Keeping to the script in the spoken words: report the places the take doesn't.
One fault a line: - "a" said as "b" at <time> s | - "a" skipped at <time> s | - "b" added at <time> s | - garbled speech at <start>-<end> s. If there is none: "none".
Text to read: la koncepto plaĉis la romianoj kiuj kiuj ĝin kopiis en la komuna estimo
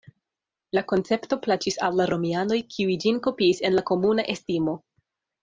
- "al" added at 1.9 s
- "kiuj" skipped at 3.0 s